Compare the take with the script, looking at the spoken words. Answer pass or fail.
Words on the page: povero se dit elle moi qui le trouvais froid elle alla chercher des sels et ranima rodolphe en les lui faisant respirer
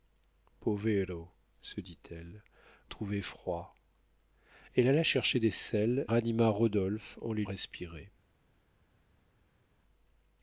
fail